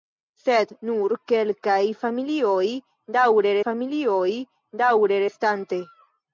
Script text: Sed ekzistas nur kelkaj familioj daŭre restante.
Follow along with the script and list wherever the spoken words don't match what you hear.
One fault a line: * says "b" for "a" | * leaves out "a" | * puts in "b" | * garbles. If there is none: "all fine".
* leaves out "ekzistas"
* puts in "familioj daŭre"